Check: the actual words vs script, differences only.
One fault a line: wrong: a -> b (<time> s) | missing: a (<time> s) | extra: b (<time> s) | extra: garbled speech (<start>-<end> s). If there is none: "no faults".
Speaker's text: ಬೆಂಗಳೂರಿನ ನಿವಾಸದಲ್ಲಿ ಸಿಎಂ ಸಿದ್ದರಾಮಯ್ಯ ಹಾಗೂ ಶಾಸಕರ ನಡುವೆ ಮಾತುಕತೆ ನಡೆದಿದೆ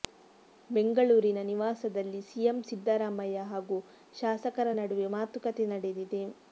no faults